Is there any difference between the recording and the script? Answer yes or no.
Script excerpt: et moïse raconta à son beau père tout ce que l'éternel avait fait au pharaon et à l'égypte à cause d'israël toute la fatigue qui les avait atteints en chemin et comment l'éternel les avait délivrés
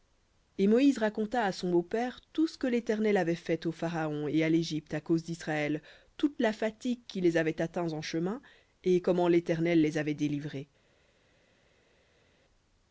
no